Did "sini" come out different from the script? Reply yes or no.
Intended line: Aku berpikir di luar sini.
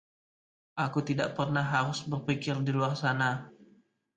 yes